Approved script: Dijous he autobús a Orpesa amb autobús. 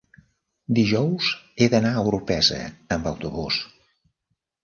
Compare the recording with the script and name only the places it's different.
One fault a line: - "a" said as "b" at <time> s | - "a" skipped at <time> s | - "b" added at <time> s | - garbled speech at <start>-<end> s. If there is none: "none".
- "autobús" said as "d'anar" at 1.7 s